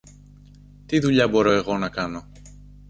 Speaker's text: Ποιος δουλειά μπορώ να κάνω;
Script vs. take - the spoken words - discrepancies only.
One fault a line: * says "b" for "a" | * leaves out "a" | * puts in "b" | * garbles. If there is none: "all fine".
* says "Τι" for "Ποιος"
* puts in "εγώ"